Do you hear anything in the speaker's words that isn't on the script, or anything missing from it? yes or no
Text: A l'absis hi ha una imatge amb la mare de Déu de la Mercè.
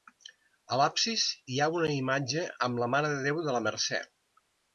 no